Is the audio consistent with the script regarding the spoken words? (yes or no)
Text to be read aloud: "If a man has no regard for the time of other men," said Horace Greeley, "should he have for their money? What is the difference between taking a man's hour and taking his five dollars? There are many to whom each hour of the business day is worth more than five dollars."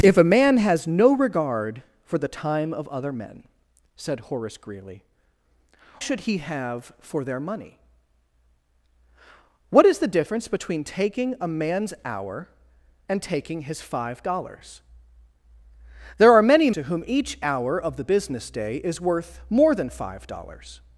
yes